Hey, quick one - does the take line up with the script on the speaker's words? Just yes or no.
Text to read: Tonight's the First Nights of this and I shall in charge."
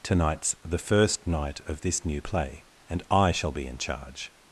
no